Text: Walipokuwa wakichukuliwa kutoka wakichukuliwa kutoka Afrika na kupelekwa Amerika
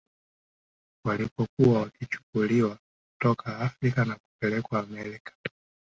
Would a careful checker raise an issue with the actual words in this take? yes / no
yes